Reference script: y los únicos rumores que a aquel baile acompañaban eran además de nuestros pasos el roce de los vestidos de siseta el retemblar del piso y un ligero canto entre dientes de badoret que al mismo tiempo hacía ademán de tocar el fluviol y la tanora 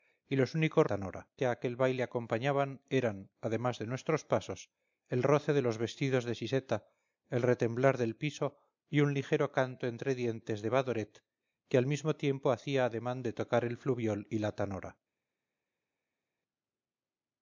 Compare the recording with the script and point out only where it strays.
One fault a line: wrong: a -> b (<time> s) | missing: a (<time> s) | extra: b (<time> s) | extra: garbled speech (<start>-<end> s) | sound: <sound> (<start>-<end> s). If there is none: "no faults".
wrong: rumores -> tanora (0.9 s)